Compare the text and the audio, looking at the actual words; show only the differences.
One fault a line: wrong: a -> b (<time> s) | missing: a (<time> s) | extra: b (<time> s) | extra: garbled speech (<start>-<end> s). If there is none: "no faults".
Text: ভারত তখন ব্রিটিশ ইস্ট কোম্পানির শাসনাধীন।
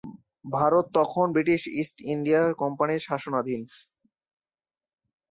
extra: ইন্ডিয়া (2.1 s)